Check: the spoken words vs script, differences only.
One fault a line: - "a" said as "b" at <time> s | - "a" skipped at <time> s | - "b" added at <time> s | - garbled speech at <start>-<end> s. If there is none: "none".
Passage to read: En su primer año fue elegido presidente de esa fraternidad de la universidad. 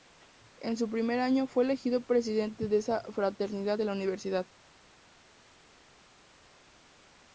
none